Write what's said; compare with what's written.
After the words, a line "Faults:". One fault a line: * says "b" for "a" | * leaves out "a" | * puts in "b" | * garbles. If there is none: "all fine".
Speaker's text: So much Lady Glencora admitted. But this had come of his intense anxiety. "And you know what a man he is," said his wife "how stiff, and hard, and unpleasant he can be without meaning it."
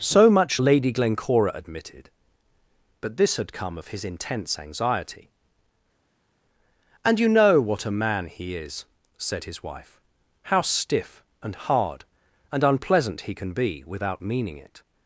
So much Lady Glencora admitted. But this had come of his intense anxiety. "And you know what a man he is," said his wife "how stiff, and hard, and unpleasant he can be without meaning it."
Faults:
all fine